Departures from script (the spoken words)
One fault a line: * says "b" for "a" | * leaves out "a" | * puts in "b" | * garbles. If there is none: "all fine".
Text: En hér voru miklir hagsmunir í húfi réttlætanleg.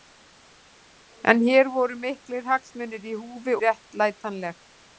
all fine